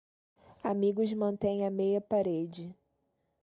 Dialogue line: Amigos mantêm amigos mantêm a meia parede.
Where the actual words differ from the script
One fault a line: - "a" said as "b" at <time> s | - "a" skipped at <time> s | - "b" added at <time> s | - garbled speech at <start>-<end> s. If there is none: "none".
- "amigos mantêm" skipped at 1.6 s